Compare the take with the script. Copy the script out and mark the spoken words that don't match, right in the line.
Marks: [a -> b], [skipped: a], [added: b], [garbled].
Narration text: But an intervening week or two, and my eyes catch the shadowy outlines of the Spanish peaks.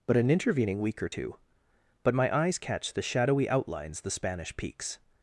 But an intervening week or two, [and -> but] my eyes catch the shadowy outlines [skipped: of] the Spanish peaks.